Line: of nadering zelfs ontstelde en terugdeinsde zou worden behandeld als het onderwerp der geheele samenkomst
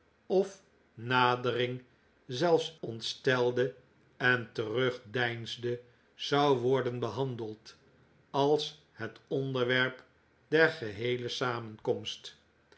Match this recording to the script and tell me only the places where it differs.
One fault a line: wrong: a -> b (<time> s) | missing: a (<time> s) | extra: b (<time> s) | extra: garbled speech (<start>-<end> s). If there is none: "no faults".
no faults